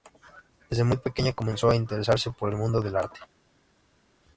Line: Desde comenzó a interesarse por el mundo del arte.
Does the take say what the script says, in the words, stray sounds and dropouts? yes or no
no